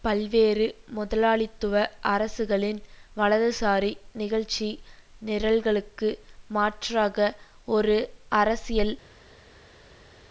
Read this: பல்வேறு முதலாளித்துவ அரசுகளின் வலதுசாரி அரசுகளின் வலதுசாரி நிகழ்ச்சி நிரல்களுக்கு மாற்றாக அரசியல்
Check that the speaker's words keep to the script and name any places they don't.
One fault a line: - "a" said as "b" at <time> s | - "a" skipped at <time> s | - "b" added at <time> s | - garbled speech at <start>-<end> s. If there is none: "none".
- "அரசுகளின் வலதுசாரி" skipped at 3.9 s
- "ஒரு" added at 7.7 s